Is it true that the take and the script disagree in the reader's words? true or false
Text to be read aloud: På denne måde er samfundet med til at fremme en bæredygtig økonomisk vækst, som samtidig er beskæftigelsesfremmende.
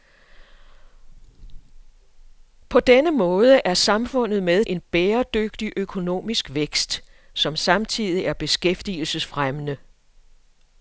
true